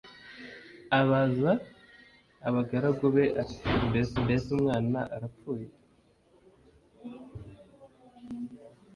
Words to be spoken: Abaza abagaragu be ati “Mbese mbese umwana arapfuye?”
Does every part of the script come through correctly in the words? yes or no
yes